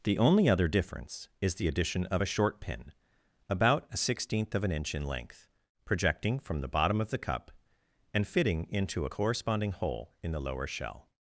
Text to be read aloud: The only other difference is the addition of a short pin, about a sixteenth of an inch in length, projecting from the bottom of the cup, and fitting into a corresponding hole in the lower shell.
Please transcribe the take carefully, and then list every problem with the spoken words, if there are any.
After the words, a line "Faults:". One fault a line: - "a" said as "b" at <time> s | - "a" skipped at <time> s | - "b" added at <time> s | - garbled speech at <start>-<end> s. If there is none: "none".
The only other difference is the addition of a short pin, about a sixteenth of an inch in length, projecting from the bottom of the cup, and fitting into a corresponding hole in the lower shell.
Faults:
none